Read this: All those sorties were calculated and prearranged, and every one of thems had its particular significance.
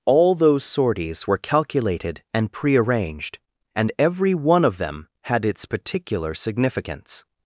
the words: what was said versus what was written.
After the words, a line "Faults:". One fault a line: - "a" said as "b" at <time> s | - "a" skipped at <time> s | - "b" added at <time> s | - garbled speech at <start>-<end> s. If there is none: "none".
All those sorties were calculated and prearranged, and every one of them had its particular significance.
Faults:
- "thems" said as "them" at 4.8 s